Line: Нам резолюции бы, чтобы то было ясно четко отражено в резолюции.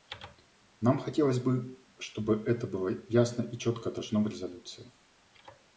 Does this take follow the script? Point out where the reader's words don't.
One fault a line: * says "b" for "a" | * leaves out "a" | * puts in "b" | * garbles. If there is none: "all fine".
* says "хотелось" for "резолюции"
* says "это" for "то"
* puts in "и"